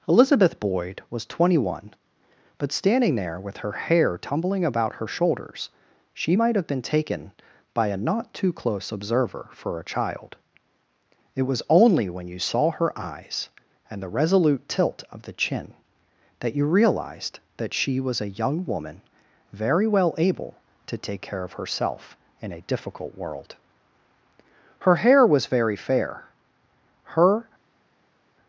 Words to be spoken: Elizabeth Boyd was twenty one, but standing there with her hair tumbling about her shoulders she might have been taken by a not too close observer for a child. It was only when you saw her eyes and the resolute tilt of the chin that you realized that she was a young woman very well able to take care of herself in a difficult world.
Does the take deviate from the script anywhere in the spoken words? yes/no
yes